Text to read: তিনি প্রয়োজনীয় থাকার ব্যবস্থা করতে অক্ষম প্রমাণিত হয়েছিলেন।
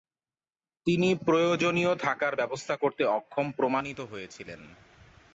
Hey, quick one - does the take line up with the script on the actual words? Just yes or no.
yes